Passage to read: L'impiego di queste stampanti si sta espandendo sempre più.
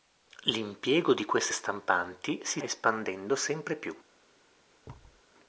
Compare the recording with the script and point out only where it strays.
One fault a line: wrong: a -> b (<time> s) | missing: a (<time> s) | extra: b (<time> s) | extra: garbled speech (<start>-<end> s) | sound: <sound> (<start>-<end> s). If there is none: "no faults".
missing: sta (2.6 s)
sound: thud (4.8-5.2 s)